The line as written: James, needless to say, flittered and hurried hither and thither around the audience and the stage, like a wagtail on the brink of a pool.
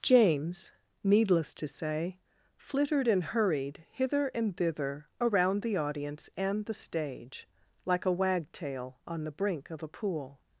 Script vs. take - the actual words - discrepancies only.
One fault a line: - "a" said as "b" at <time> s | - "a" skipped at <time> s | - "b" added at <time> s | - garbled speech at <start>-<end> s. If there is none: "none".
none